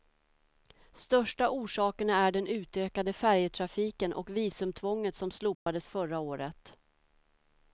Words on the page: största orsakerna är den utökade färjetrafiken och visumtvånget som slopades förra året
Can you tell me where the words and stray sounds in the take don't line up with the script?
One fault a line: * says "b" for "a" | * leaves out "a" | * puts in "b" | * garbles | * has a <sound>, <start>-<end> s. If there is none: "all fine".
* has a dropout, 5.5-5.7 s